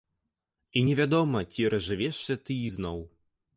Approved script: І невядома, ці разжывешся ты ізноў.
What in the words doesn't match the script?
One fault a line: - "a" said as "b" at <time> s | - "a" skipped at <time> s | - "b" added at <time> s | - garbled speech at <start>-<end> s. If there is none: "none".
none